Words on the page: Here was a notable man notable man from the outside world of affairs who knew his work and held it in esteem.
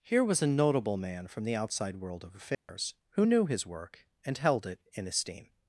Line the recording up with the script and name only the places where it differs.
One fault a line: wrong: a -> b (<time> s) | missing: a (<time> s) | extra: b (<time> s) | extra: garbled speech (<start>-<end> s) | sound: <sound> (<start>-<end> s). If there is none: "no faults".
missing: notable man (1.3 s)
sound: dropout (2.5-2.7 s)